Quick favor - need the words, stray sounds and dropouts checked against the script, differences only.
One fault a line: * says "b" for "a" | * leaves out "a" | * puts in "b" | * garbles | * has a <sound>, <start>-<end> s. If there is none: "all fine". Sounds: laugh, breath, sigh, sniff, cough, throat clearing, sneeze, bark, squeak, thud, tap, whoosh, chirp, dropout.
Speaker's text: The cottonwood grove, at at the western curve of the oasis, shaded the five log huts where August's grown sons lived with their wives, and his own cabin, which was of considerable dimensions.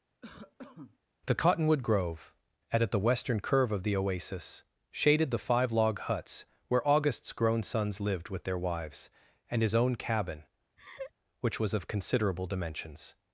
* has a cough, 0.2-1.0 s
* has a laugh, 10.8-11.1 s